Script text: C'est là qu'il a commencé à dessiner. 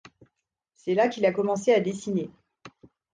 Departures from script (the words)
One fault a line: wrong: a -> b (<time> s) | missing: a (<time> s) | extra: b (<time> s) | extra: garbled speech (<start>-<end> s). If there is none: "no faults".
no faults